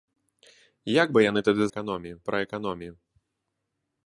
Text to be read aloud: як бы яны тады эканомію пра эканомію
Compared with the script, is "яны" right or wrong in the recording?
right